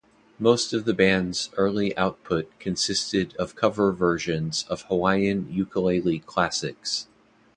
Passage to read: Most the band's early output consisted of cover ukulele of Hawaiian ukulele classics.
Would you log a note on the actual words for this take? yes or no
yes